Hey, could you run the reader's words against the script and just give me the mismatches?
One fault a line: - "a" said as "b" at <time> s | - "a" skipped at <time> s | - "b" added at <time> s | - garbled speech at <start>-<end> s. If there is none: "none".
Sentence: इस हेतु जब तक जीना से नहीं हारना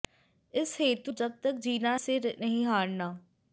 none